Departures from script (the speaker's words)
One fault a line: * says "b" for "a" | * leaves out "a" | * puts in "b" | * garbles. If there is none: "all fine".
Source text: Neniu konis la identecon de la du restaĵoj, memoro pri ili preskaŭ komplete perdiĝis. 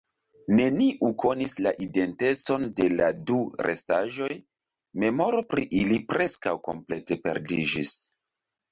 all fine